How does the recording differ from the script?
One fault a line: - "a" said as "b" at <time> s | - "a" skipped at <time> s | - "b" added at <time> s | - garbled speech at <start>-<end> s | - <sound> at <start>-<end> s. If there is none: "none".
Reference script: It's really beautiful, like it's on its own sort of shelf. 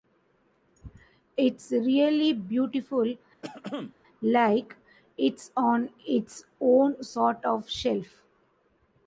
- throat clearing at 3.4-3.9 s